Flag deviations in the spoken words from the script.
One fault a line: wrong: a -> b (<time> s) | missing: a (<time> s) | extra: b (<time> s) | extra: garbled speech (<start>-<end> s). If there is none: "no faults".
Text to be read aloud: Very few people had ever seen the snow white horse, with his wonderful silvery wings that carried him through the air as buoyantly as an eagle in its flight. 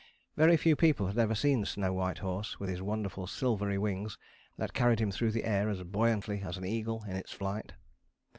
no faults